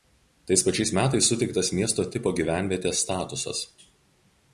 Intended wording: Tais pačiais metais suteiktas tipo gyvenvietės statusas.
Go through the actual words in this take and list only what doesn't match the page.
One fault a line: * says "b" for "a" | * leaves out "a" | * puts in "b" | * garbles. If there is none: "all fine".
* puts in "miesto"